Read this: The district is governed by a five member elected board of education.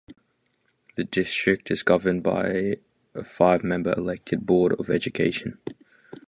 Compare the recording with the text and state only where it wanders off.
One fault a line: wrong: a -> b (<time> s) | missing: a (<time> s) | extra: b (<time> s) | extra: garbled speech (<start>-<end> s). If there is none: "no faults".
no faults